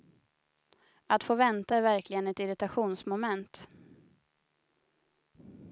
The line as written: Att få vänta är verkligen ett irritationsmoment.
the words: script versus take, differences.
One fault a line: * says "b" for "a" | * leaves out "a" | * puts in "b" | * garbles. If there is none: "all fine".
all fine